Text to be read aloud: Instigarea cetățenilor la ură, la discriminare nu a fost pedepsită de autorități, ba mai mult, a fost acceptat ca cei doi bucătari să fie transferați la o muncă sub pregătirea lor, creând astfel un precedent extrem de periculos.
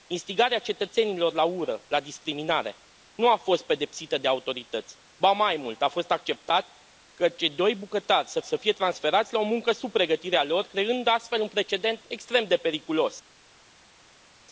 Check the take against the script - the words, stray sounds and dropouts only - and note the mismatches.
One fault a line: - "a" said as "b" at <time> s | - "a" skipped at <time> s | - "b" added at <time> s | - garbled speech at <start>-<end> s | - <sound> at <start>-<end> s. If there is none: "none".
- "să" added at 8.4 s